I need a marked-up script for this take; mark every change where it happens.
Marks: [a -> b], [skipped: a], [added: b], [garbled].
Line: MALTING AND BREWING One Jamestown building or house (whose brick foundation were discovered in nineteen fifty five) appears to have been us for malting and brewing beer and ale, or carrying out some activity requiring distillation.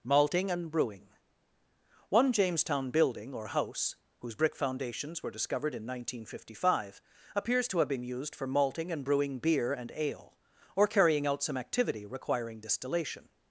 MALTING AND BREWING One Jamestown building or house (whose brick [foundation -> foundations] were discovered in nineteen fifty five) appears to have been [us -> used] for malting and brewing beer and ale, or carrying out some activity requiring distillation.